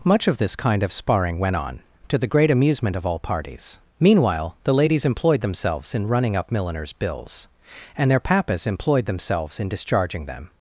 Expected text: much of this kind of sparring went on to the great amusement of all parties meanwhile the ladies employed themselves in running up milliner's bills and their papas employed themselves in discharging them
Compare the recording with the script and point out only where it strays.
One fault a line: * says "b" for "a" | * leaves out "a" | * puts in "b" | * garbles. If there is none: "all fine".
all fine